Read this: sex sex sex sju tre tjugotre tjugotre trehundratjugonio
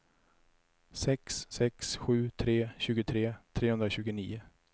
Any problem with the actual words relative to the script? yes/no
yes